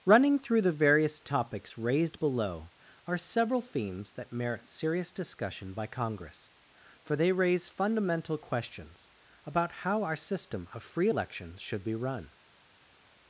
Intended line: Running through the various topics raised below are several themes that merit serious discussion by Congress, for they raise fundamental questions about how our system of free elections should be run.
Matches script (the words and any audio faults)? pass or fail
pass